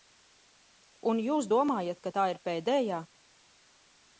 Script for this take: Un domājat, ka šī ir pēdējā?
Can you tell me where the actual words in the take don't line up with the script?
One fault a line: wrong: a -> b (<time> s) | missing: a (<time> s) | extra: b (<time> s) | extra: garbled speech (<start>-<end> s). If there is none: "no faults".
extra: jūs (1.2 s)
wrong: šī -> tā (2.2 s)